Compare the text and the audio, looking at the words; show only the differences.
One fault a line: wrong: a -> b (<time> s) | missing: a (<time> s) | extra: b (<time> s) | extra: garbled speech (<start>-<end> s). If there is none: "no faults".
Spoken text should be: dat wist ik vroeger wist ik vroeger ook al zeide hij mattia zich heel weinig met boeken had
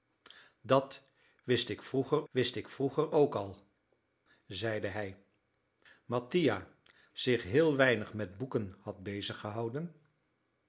no faults